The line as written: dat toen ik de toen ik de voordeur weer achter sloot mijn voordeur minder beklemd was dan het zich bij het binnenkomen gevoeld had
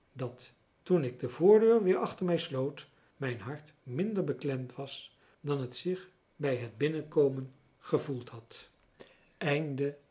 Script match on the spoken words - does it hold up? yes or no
no